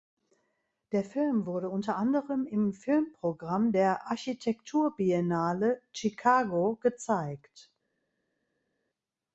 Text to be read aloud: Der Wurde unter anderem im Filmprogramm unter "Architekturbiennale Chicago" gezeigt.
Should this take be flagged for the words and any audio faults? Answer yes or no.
yes